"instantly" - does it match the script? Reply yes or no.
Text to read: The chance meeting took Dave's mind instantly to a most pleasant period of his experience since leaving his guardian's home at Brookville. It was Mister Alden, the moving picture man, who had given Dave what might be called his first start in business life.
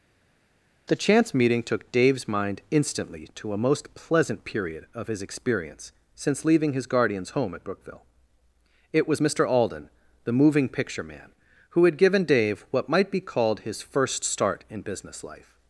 yes